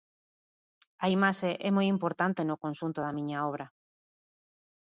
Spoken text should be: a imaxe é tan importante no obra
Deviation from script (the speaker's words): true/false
true